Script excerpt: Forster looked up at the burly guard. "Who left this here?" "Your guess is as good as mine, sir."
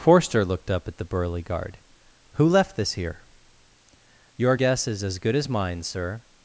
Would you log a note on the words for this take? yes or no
no